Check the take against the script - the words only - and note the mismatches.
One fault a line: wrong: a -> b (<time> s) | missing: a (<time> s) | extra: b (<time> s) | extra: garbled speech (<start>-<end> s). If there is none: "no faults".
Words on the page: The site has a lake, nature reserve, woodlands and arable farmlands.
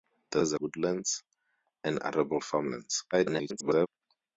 missing: site (0.4 s)
missing: lake nature reserve (0.6 s)
extra: garbled speech (3.1-3.9 s)